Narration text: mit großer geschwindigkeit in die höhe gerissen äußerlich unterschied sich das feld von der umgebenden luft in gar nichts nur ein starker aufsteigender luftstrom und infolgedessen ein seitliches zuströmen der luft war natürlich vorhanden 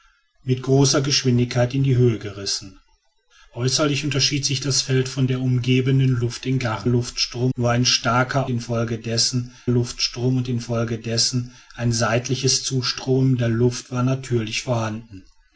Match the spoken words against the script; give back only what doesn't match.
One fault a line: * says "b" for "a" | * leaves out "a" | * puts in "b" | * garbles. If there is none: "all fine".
* says "luftstrom" for "nichts"
* says "infolgedessen" for "aufsteigender"